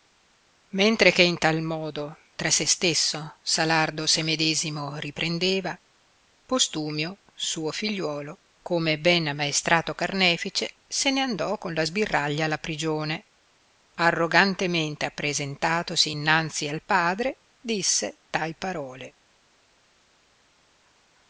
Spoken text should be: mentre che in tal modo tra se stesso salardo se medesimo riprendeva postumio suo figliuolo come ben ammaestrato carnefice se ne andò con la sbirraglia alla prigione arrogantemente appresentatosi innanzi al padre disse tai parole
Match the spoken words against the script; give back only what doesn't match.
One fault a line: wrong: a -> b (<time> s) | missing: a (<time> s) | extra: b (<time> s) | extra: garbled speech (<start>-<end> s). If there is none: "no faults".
no faults